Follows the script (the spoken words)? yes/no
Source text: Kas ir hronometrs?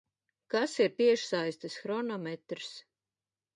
no